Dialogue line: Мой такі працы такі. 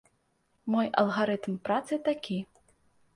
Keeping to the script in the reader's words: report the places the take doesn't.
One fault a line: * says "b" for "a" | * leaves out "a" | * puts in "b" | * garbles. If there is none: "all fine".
* says "алгарытм" for "такі"